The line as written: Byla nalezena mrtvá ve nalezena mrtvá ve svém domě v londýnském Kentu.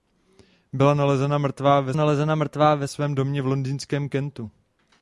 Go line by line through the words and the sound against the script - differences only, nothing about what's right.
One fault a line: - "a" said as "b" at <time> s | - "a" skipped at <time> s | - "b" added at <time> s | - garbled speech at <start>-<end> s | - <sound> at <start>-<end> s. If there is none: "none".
none